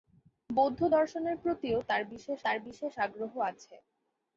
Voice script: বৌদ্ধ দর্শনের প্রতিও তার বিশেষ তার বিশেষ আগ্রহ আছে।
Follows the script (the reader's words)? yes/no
yes